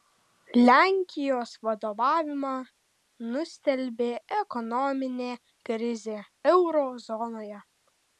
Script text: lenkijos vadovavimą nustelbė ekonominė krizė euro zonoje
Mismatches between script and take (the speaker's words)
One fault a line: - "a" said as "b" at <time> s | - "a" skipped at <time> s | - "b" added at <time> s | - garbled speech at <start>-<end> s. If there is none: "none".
none